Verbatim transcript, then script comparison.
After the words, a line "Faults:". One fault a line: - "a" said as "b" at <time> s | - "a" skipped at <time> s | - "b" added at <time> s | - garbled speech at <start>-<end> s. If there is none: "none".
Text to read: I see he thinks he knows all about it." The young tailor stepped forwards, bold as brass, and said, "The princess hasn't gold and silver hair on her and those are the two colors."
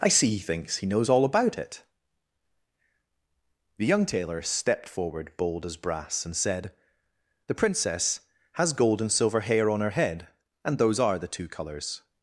I see he thinks he knows all about it." The young tailor stepped forward, bold as brass, and said, "The princess has gold and silver hair on her head, and those are the two colors."
Faults:
- "forwards" said as "forward" at 4.9 s
- "hasn't" said as "has" at 8.5 s
- "head" added at 9.9 s